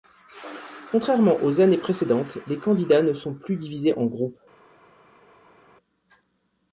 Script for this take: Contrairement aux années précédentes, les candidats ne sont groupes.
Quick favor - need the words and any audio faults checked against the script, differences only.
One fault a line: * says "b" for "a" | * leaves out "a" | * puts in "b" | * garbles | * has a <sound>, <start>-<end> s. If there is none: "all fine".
* puts in "plus divisés en"